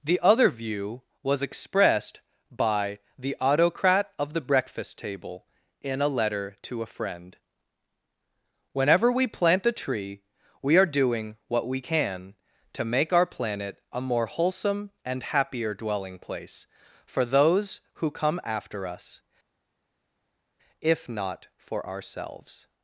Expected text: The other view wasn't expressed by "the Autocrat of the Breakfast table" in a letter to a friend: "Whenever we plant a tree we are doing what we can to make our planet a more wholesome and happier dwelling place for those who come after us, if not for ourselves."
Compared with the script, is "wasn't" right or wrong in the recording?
wrong